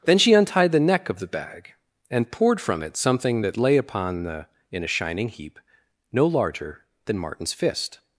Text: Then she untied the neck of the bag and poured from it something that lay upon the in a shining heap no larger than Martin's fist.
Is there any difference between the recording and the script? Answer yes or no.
no